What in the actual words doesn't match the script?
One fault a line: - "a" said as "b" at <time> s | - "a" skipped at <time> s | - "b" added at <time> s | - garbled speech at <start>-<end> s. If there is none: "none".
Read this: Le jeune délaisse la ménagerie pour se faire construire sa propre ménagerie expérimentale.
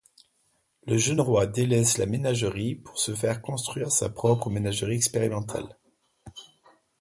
- "roi" added at 1.2 s